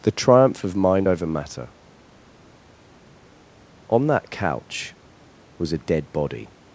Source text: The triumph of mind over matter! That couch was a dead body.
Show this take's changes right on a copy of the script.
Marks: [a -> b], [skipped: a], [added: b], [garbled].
The triumph of mind over matter! [added: On] That couch was a dead body.